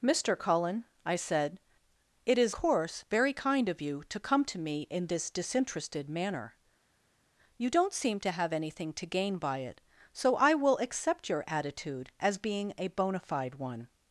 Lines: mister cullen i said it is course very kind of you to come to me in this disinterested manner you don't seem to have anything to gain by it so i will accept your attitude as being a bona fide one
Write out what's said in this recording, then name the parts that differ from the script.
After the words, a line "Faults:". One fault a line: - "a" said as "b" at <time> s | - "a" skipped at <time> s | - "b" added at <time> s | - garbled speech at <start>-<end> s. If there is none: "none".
mister cullen i said it is course very kind of you to come to me in this disinterested manner you don't seem to have anything to gain by it so i will accept your attitude as being a bona fide one
Faults:
none